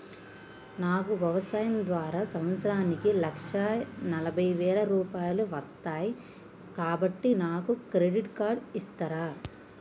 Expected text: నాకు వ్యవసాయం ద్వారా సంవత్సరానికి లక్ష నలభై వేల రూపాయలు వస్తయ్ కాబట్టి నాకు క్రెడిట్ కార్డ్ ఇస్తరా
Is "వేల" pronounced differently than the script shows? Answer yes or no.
no